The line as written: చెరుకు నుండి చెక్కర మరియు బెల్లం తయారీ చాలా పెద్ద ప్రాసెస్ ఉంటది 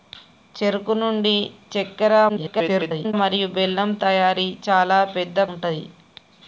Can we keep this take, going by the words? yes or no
no